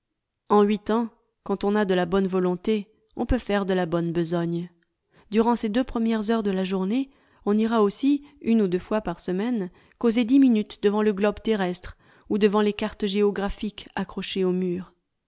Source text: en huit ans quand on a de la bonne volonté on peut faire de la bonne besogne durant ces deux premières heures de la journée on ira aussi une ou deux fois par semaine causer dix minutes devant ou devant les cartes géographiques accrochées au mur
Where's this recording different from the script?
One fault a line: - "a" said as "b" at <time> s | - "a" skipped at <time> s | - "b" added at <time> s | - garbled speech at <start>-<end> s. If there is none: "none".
- "le globe terrestre" added at 11.0 s